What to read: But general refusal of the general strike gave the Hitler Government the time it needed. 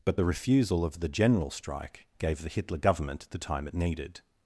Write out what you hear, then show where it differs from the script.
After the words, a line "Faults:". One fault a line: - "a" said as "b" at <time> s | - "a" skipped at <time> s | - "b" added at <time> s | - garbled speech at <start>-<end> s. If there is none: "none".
But the refusal of the general strike gave the Hitler Government the time it needed.
Faults:
- "general" said as "the" at 0.1 s